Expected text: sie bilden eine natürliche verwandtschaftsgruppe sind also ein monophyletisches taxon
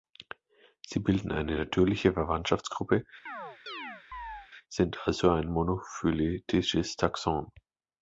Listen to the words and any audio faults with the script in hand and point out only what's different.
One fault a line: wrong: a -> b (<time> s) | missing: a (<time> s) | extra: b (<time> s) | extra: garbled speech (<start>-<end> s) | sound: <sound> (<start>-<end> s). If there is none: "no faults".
sound: chirp (3.3-4.5 s)